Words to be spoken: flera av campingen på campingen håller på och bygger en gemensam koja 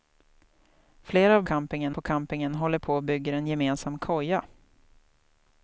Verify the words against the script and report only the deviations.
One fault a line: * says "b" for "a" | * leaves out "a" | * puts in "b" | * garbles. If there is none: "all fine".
all fine